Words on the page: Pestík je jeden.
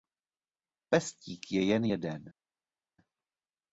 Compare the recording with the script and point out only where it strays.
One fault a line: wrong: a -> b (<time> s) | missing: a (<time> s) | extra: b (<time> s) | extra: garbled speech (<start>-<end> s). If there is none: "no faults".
extra: jen (1.7 s)